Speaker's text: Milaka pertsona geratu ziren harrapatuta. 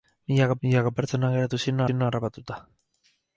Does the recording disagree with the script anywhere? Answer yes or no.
yes